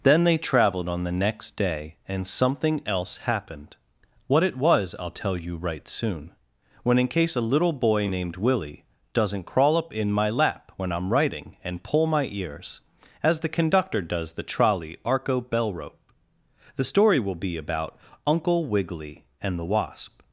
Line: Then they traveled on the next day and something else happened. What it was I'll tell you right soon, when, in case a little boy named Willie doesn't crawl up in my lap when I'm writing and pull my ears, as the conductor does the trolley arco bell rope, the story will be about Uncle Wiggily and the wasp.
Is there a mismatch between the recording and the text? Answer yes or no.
no